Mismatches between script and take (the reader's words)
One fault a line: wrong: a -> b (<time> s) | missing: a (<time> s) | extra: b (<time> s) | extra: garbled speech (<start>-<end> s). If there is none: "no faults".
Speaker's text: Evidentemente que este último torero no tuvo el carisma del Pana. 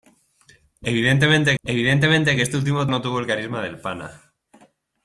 extra: evidentemente (1.6 s)
missing: torero (2.9 s)